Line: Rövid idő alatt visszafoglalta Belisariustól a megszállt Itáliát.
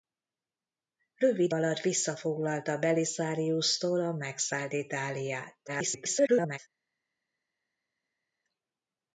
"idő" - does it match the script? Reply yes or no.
no